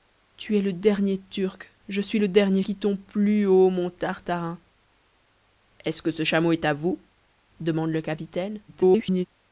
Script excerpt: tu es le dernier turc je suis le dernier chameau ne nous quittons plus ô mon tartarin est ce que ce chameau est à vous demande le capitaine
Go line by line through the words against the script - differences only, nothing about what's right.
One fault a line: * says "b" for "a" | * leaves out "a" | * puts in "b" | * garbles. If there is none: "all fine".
* leaves out "chameau ne nous"
* garbles